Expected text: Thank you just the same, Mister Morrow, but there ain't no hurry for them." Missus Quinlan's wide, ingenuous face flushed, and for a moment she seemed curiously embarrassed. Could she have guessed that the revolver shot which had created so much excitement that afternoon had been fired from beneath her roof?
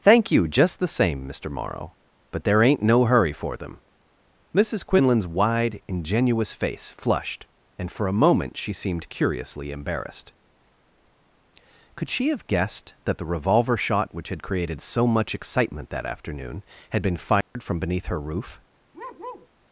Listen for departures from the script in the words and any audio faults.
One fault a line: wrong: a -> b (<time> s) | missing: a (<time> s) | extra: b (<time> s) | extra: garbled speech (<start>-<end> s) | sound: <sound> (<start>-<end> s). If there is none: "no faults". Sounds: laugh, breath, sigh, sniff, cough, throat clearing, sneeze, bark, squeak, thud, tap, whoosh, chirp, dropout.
sound: dropout (17.4-17.6 s)
sound: bark (18.9-19.5 s)